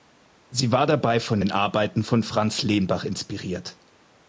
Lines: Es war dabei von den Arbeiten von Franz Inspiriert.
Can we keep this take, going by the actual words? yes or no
no